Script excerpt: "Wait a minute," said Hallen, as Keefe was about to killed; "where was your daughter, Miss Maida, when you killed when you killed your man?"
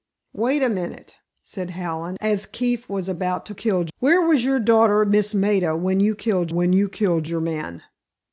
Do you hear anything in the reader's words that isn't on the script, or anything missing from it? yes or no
no